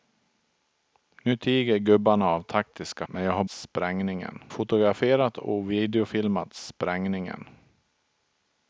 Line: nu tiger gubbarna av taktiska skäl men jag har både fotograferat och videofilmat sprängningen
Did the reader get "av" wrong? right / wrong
right